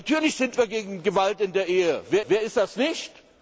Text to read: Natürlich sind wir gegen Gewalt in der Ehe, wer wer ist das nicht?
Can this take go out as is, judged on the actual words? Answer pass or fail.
pass